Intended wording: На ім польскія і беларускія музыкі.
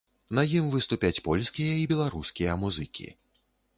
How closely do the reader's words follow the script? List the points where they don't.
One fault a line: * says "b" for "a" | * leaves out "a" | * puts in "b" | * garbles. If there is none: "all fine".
* puts in "выступяць"